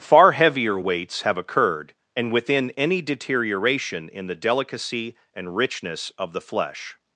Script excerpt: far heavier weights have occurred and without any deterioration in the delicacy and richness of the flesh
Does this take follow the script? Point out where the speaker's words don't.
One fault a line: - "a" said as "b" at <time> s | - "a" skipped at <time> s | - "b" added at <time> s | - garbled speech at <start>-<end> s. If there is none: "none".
- "without" said as "within" at 2.3 s